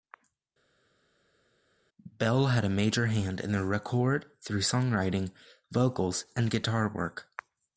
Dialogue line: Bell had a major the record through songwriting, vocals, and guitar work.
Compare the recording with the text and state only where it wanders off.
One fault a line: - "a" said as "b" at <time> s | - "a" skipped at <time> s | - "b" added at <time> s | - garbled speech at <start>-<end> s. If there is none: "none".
- "hand in" added at 3.1 s